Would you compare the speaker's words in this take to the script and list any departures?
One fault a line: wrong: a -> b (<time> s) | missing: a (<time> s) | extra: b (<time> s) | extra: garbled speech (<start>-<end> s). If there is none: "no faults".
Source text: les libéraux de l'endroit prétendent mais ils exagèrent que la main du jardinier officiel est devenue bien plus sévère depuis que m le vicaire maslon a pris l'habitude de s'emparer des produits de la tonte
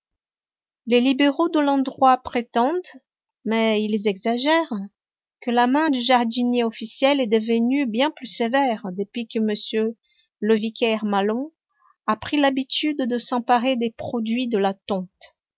no faults